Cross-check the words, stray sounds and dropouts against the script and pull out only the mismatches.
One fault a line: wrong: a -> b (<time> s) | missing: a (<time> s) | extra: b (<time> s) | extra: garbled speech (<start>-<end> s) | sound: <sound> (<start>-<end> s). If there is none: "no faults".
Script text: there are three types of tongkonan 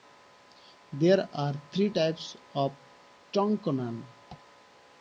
no faults